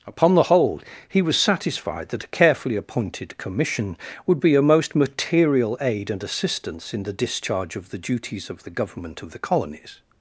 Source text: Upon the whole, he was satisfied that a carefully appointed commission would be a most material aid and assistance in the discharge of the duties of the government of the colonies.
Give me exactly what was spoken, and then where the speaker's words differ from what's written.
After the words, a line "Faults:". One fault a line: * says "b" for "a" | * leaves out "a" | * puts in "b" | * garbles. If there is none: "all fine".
Upon the whole, he was satisfied that a carefully appointed commission would be a most material aid and assistance in the discharge of the duties of the government of the colonies.
Faults:
all fine